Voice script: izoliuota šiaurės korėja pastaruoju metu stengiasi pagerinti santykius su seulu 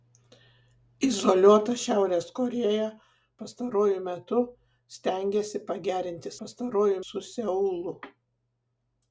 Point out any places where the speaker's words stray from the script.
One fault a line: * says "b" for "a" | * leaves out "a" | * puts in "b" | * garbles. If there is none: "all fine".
* says "pastaruoju" for "santykius"